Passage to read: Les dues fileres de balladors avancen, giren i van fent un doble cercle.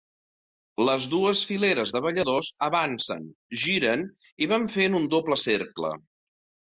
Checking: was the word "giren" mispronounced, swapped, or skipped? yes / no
no